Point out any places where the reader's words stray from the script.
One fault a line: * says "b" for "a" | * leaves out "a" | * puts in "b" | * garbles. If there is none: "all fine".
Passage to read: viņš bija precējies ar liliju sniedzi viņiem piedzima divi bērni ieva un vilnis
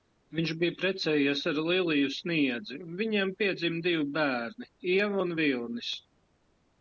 all fine